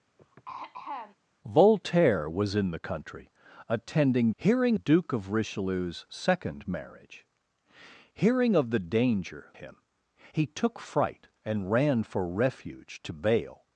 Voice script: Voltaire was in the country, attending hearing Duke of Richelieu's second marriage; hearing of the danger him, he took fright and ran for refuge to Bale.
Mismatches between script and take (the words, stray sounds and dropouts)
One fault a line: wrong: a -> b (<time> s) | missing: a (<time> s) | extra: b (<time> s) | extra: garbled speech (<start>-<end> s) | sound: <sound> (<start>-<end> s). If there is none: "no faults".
sound: throat clearing (0.2-1.2 s)